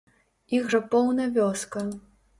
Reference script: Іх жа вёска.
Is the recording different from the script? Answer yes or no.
yes